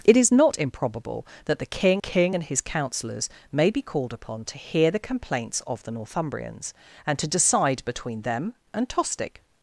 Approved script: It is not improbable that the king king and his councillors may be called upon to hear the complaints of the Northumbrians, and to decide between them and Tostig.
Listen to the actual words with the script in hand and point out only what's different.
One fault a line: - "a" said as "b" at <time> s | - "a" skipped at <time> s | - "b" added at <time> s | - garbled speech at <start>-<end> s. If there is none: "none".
none